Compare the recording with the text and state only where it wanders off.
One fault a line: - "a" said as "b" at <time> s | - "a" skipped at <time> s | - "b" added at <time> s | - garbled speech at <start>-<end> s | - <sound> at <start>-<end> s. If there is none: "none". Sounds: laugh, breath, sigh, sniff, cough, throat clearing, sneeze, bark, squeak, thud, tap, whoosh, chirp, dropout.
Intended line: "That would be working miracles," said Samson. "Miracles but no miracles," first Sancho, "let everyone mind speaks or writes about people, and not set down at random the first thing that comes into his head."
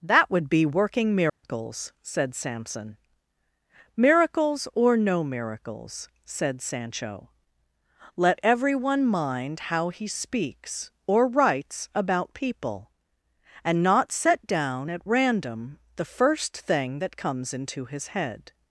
- dropout at 1.3-1.4 s
- "but" said as "or" at 4.7 s
- "first" said as "said" at 6.2 s
- "how he" added at 9.7 s